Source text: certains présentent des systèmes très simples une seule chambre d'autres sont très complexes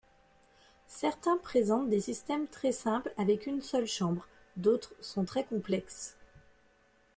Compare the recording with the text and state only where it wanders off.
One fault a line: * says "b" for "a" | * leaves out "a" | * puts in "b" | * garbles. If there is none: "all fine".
* puts in "avec"